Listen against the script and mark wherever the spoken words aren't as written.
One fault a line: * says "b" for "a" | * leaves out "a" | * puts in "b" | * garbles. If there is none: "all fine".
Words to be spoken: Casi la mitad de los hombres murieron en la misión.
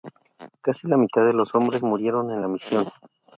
all fine